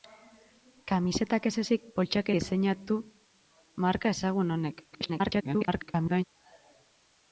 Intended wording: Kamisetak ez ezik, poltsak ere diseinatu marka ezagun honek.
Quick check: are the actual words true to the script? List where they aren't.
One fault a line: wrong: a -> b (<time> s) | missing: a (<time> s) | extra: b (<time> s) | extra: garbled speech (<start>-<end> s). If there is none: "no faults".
missing: ere (2.3 s)
extra: garbled speech (4.9-6.2 s)